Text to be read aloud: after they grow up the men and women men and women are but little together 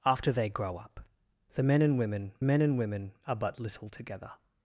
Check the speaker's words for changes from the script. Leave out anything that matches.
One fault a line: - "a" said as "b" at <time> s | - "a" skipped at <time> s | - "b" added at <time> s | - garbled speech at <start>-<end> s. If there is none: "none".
none